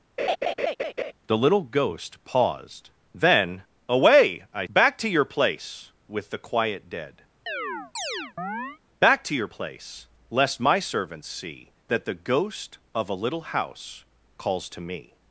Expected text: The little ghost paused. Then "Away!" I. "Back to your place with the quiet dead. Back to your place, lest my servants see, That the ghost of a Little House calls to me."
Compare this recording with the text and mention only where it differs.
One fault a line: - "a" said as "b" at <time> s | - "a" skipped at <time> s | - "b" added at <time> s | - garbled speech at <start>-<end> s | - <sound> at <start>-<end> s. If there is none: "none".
- laugh at 0.2-1.1 s
- chirp at 7.5-8.8 s